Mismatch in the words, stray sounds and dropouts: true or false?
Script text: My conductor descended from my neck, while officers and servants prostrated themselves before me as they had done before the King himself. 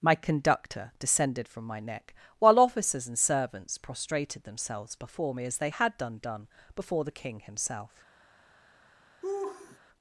true